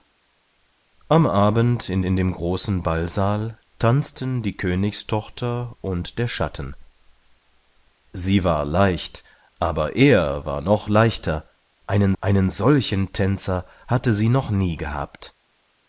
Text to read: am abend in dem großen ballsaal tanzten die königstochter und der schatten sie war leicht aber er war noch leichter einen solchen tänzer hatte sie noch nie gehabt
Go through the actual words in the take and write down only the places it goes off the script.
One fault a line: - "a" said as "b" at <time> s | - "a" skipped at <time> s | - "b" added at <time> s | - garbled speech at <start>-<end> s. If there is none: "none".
- "in" added at 2.0 s
- "einen" added at 12.2 s